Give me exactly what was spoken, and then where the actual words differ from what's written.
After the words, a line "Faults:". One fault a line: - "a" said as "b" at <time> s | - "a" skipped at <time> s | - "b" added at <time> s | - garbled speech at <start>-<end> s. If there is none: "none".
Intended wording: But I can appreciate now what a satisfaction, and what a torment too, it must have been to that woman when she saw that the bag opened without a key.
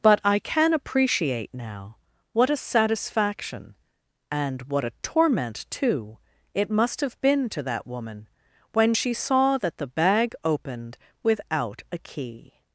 But I can appreciate now what a satisfaction, and what a torment too, it must have been to that woman when she saw that the bag opened without a key.
Faults:
none